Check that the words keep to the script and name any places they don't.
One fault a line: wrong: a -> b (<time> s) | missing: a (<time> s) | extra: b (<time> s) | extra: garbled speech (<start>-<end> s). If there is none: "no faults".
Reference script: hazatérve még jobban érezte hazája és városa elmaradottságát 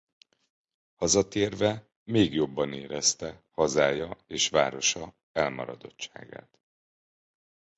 no faults